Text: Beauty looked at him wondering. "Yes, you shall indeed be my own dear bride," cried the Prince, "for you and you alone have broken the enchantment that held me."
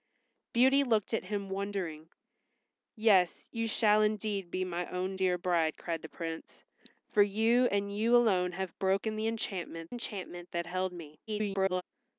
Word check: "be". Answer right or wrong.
right